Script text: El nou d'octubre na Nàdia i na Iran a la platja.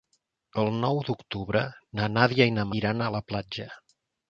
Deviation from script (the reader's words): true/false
false